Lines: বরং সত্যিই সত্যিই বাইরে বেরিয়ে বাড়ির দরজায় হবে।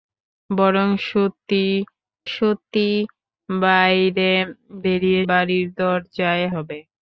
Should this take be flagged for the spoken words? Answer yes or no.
no